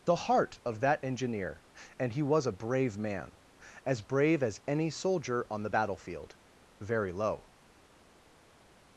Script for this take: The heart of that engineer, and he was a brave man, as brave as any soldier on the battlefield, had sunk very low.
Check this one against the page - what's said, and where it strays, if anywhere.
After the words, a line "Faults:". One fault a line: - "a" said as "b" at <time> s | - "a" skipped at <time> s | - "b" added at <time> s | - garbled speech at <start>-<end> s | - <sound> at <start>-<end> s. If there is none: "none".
The heart of that engineer, and he was a brave man, as brave as any soldier on the battlefield, very low.
Faults:
- "had sunk" skipped at 6.4 s